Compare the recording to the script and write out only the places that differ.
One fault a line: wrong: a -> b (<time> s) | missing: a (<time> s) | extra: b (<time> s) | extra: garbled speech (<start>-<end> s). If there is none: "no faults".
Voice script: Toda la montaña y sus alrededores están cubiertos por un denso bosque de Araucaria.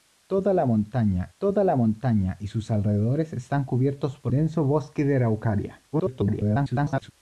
extra: toda la montaña (1.4 s)
missing: un (4.3 s)
extra: garbled speech (5.9-7.1 s)